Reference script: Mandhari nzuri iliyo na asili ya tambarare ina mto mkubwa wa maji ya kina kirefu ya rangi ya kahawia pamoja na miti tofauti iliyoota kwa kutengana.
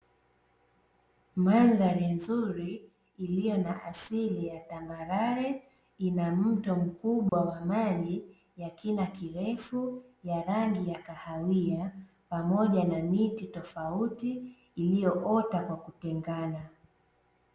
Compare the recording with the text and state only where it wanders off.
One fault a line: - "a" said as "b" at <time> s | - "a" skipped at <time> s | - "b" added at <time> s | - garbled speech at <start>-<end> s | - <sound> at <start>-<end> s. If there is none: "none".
- dropout at 7.3-7.3 s